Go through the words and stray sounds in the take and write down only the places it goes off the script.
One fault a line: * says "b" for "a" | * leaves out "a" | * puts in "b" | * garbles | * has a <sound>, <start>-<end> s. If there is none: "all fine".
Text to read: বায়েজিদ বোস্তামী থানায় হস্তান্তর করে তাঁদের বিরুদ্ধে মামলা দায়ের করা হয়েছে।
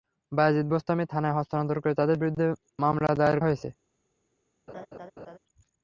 * leaves out "করা"
* has a laugh, 4.7-5.4 s